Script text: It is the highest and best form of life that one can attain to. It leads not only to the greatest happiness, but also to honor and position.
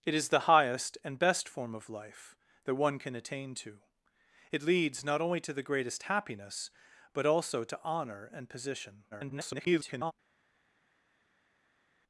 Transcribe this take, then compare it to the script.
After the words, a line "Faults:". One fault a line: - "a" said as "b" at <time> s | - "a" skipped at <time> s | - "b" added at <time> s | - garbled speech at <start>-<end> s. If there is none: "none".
It is the highest and best form of life that one can attain to. It leads not only to the greatest happiness, but also to honor and position. [garbled]
Faults:
- garbled speech at 9.1-10.1 s